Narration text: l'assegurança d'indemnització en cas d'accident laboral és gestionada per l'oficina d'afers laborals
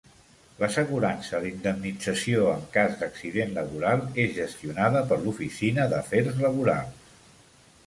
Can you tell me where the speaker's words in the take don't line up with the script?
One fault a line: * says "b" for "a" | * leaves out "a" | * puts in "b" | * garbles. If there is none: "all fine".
all fine